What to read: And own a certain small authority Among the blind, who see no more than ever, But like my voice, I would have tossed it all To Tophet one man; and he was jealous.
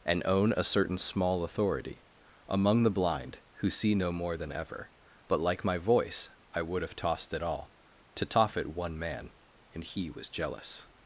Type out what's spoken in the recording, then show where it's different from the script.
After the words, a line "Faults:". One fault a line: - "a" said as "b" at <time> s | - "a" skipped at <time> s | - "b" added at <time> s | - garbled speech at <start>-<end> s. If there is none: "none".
And own a certain small authority Among the blind, who see no more than ever, But like my voice, I would have tossed it all To Tophet one man; and he was jealous.
Faults:
none